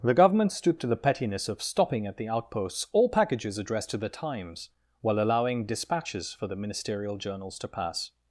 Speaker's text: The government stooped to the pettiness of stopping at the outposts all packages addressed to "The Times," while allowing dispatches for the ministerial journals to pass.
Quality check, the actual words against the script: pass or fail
pass